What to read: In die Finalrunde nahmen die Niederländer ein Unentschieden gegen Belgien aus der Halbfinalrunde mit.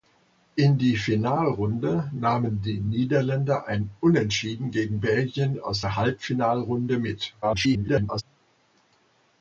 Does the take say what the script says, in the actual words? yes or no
no